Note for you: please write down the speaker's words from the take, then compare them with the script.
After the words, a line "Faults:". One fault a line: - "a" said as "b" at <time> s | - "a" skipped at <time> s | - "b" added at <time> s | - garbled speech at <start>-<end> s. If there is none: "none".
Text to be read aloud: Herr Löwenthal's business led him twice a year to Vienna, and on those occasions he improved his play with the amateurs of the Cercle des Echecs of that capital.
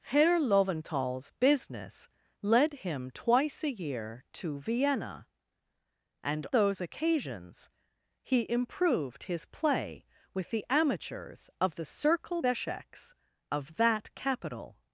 Herr Löwenthal's business led him twice a year to Vienna, and those occasions he improved his play with the amateurs of the Cercle Echecs of that capital.
Faults:
- "on" skipped at 6.5 s
- "des" skipped at 12.4 s